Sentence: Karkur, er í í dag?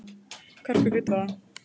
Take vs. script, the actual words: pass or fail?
pass